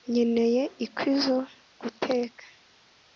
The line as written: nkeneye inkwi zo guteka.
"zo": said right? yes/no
yes